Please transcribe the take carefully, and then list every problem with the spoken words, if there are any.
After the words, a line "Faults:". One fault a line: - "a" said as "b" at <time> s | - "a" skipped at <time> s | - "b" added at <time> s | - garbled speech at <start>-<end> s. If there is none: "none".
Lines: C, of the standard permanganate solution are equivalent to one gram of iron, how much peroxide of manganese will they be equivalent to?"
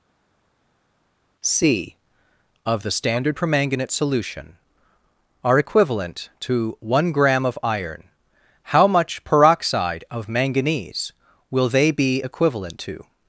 C, of the standard permanganate solution are equivalent to one gram of iron, how much peroxide of manganese will they be equivalent to?"
Faults:
none